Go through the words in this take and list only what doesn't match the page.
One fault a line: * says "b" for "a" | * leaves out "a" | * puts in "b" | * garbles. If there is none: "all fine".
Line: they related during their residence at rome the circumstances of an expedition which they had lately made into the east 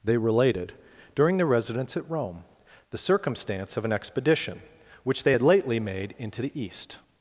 * says "circumstance" for "circumstances"